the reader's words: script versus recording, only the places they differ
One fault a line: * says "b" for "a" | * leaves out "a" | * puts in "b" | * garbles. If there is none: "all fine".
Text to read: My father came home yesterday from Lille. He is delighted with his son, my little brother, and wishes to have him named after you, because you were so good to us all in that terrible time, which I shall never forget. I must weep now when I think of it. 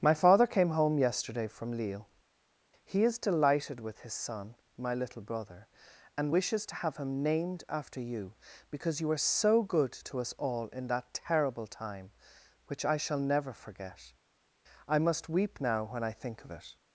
all fine